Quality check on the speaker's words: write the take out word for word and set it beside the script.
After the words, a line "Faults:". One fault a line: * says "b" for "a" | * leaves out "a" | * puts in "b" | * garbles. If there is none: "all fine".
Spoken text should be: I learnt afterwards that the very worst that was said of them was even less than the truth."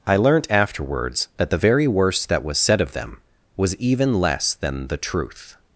I learnt afterwards that the very worst that was said of them was even less than the truth."
Faults:
all fine